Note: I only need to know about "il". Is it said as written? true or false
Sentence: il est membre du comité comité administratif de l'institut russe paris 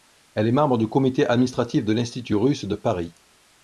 false